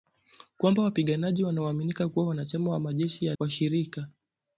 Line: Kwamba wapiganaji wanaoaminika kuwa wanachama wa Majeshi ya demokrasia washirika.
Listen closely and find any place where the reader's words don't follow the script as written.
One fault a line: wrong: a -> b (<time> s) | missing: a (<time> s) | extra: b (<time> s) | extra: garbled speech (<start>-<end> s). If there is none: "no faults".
missing: demokrasia (3.4 s)